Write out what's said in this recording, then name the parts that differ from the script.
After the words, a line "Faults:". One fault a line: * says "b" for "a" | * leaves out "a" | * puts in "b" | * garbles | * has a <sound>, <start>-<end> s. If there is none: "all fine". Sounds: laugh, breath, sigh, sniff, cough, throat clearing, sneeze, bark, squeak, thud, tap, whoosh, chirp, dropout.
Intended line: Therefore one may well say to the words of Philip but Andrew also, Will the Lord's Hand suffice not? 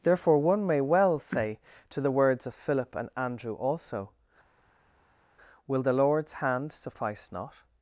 Therefore one may well say to the words of Philip and Andrew also, Will the Lord's Hand suffice not?
Faults:
* says "and" for "but"